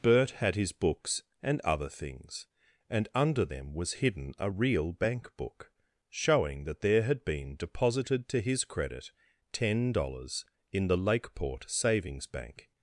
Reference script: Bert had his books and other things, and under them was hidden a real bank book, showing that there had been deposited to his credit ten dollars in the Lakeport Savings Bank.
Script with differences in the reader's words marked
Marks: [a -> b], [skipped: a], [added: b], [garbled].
Bert had his books and other things, and under them was hidden a real bank book, showing that there had been deposited to his credit ten dollars in the Lakeport Savings Bank.